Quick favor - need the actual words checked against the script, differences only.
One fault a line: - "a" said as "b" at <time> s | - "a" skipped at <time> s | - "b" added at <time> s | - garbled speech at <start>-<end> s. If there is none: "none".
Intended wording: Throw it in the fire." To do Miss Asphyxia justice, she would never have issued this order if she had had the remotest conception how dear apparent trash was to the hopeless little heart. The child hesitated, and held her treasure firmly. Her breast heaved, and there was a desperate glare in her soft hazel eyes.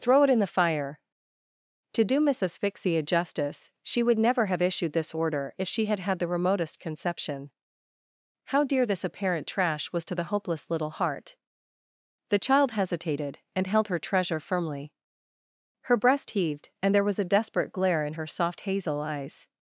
- "this" added at 8.8 s